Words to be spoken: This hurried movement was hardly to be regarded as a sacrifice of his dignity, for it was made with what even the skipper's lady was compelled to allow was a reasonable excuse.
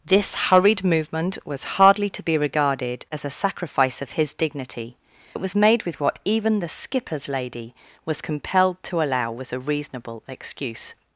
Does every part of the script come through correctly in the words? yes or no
no